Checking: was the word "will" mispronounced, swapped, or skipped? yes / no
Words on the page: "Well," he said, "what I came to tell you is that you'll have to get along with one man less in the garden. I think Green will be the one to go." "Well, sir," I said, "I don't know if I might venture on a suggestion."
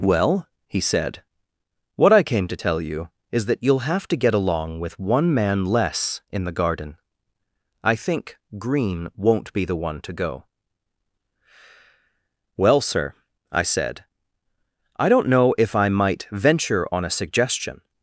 yes